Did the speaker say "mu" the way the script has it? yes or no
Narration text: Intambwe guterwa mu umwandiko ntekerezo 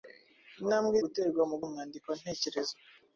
yes